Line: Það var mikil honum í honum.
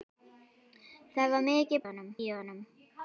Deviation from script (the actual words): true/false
false